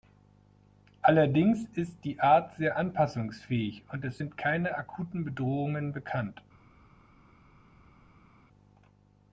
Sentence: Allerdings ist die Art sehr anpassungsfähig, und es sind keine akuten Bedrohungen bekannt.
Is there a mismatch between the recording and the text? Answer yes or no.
no